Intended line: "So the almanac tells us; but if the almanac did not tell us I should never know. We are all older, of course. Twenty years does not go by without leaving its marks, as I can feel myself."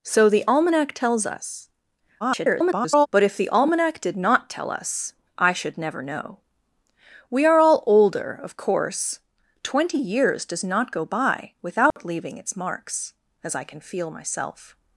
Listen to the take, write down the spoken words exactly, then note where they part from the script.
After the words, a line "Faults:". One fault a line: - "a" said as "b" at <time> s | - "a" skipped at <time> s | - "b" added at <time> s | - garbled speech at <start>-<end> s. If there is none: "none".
"So the almanac tells us; [garbled] but if the almanac did not tell us I should never know. We are all older, of course. Twenty years does not go by without leaving its marks, as I can feel myself."
Faults:
- garbled speech at 2.2-3.1 s